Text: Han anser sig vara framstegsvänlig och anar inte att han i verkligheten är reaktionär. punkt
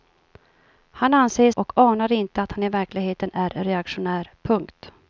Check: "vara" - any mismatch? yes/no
yes